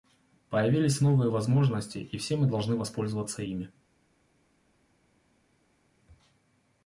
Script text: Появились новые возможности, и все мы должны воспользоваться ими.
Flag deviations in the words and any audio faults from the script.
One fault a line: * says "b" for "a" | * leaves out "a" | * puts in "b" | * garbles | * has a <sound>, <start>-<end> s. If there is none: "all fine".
all fine